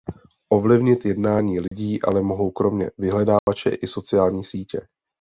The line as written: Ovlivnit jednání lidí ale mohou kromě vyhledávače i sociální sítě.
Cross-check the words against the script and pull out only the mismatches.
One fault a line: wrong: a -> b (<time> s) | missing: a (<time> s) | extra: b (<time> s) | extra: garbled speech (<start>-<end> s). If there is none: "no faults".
no faults